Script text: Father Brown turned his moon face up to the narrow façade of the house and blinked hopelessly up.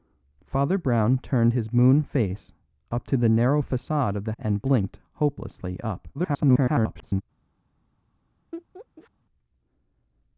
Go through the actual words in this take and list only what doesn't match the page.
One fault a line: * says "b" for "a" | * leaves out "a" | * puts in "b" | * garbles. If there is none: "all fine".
* leaves out "house"
* garbles